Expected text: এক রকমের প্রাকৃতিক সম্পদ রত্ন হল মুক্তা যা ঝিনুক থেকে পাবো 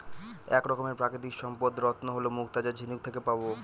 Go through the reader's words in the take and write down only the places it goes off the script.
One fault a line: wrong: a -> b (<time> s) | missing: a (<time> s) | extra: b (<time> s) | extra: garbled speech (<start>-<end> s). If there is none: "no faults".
no faults